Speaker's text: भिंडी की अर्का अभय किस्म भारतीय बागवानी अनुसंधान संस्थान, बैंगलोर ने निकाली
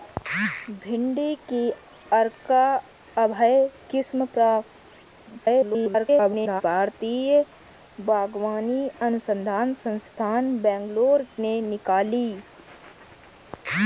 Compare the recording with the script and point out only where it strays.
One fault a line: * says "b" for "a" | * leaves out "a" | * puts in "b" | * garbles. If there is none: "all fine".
* garbles